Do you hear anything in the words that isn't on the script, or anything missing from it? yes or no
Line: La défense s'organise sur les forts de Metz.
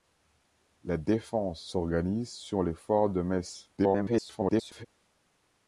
yes